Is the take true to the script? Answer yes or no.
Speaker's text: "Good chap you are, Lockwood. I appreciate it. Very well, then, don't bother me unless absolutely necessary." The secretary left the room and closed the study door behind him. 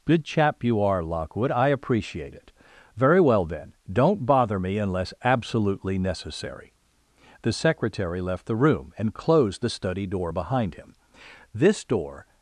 no